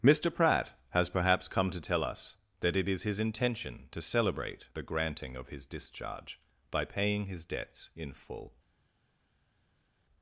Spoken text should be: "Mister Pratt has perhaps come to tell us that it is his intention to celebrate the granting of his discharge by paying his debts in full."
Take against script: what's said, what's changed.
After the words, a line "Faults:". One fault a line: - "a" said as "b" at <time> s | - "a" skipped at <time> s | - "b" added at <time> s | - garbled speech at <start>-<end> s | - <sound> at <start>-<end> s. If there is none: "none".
"Mister Pratt has perhaps come to tell us that it is his intention to celebrate the granting of his discharge by paying his debts in full."
Faults:
none